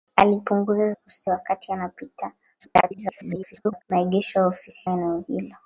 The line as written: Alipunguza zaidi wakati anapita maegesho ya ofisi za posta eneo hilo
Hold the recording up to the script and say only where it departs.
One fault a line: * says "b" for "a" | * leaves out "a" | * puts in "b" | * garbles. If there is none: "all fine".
* says "posta" for "zaidi"
* garbles
* leaves out "za posta"